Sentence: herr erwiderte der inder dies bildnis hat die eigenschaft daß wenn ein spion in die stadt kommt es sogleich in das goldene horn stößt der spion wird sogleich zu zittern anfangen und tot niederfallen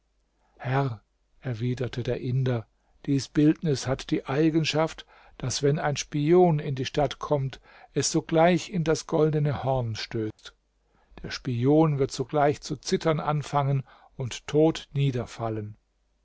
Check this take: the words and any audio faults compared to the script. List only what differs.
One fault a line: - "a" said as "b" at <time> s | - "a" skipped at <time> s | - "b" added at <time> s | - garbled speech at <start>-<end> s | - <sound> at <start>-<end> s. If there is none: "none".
- dropout at 10.3-10.4 s